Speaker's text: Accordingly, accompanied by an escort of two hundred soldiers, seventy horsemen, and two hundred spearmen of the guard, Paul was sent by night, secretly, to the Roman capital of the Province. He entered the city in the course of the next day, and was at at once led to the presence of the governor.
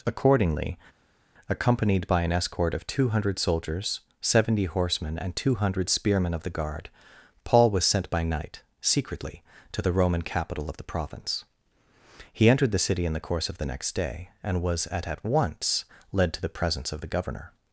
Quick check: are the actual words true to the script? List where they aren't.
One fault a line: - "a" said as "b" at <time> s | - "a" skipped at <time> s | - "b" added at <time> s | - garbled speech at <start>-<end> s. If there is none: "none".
none